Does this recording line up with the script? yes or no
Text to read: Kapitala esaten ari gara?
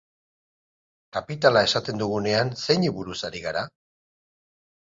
no